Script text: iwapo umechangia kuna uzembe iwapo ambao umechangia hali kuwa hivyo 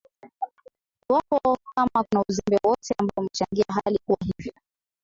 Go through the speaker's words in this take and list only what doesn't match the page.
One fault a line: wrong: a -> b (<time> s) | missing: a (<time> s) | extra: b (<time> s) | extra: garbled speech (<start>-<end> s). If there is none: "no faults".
wrong: umechangia -> kama (1.7 s)
wrong: iwapo -> wowote (2.6 s)